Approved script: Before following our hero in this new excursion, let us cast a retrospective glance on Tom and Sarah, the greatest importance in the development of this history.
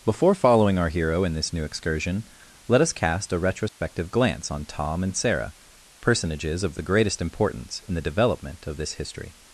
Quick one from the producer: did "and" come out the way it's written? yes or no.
yes